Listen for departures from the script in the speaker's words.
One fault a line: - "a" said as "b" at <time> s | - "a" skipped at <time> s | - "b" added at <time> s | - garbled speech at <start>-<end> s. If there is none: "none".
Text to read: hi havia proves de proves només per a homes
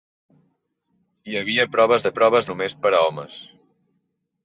none